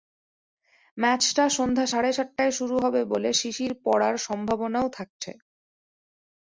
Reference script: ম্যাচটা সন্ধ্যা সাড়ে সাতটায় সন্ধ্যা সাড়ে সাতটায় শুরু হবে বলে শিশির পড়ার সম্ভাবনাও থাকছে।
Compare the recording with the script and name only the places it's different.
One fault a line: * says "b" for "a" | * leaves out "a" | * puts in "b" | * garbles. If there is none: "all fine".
* leaves out "সন্ধ্যা সাড়ে সাতটায়"